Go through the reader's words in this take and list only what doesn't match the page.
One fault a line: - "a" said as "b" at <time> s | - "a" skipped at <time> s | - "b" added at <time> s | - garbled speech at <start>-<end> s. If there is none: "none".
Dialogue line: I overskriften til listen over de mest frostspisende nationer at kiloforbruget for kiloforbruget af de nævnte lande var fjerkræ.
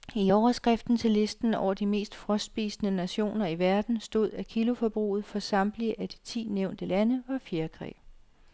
- "i verden stod" added at 3.5 s
- "kiloforbruget" said as "samtlige" at 5.4 s
- "ti" added at 6.2 s